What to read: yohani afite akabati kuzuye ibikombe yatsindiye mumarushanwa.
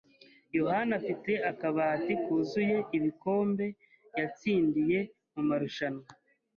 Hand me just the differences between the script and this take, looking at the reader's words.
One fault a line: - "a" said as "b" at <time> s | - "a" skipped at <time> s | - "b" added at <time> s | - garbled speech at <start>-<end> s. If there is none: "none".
none